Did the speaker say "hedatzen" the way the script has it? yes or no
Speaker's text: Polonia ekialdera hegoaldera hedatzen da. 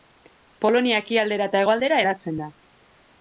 yes